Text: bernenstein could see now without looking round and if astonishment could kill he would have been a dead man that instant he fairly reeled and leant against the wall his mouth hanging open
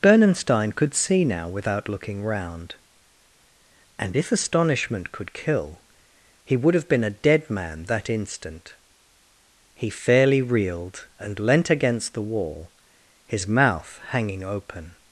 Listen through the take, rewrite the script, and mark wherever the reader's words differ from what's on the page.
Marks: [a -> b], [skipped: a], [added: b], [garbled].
bernenstein could see now without looking round and if astonishment could kill he would have been a dead man that instant he fairly reeled and leant against the wall his mouth hanging open